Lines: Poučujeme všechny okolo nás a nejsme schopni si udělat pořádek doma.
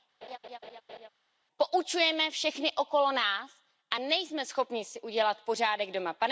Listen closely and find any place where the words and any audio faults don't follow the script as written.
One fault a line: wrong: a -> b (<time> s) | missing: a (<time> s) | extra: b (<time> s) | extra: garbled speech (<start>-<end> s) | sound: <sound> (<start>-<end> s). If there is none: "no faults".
sound: laugh (0.2-1.1 s)